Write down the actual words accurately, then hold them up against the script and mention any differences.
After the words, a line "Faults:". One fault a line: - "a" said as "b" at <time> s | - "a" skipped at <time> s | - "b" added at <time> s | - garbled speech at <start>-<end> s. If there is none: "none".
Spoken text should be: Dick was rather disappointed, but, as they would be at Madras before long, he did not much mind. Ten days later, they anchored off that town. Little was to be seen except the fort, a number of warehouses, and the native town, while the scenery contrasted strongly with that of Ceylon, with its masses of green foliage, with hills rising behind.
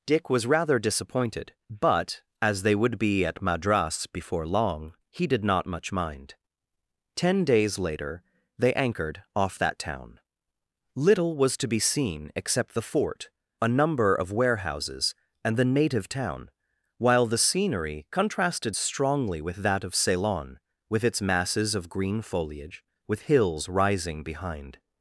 Dick was rather disappointed, but, as they would be at Madras before long, he did not much mind. Ten days later, they anchored off that town. Little was to be seen except the fort, a number of warehouses, and the native town, while the scenery contrasted strongly with that of Ceylon, with its masses of green foliage, with hills rising behind.
Faults:
none